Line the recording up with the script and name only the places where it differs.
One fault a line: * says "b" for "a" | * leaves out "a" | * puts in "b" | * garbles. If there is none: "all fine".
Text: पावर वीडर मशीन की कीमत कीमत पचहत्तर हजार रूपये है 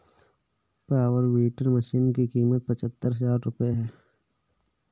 * leaves out "कीमत"